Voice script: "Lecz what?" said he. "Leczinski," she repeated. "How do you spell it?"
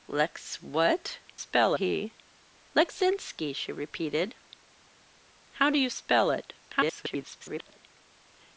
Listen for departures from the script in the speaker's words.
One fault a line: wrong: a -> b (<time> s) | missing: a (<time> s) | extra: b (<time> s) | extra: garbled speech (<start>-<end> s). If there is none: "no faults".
wrong: said -> spell (1.3 s)
extra: garbled speech (6.6-7.8 s)